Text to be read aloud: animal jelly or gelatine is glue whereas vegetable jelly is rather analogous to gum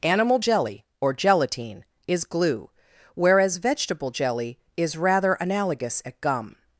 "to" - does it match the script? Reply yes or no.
no